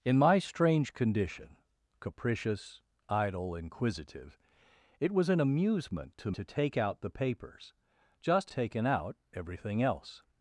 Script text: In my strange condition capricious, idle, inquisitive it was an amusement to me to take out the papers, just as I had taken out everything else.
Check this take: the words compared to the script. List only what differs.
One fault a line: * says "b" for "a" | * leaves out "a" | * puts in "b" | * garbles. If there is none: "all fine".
* leaves out "me"
* leaves out "as I had"